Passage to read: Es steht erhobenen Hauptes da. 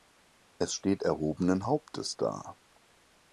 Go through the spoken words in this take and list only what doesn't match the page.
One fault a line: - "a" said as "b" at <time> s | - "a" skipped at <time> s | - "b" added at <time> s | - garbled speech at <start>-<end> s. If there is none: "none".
none